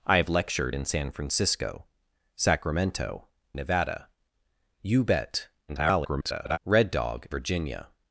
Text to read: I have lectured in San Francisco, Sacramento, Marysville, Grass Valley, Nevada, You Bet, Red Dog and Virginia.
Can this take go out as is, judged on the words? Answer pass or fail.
fail